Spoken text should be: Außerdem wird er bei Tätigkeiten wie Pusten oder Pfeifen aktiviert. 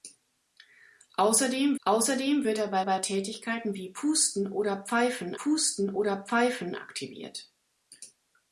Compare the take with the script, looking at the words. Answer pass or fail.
fail